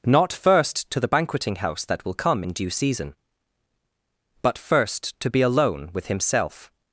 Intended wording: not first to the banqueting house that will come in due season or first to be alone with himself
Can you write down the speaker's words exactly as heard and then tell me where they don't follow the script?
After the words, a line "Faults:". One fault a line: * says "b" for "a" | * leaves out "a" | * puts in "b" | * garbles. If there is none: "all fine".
not first to the banqueting house that will come in due season but first to be alone with himself
Faults:
* says "but" for "or"